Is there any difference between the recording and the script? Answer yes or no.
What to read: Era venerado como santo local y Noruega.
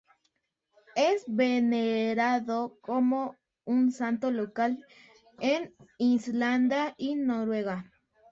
yes